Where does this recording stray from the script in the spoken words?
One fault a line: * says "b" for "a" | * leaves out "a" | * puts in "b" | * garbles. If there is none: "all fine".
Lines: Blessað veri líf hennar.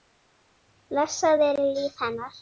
all fine